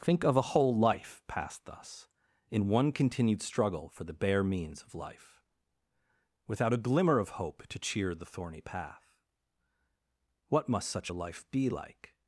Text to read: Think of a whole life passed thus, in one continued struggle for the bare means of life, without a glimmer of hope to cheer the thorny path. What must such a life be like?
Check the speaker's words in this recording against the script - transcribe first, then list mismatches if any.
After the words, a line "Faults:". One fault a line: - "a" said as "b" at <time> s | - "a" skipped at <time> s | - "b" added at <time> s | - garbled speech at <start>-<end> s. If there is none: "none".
Think of a whole life passed thus, in one continued struggle for the bare means of life, without a glimmer of hope to cheer the thorny path. What must such a life be like?
Faults:
none